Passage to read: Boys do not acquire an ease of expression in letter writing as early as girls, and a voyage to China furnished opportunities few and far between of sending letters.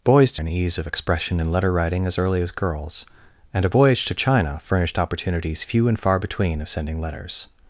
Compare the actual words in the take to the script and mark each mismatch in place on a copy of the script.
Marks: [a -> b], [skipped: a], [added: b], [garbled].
Boys do [skipped: not acquire] an ease of expression in letter writing as early as girls, and a voyage to China furnished opportunities few and far between of sending letters.